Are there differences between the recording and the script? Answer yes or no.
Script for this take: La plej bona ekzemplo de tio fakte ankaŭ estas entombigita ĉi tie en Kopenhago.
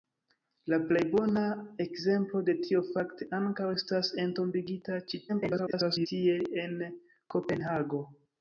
yes